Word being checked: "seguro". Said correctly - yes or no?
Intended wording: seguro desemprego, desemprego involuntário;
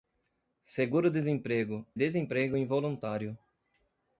yes